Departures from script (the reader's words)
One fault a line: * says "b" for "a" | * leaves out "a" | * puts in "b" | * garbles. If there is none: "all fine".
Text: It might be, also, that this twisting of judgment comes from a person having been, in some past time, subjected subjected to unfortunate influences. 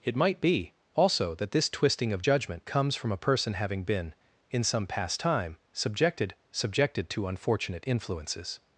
all fine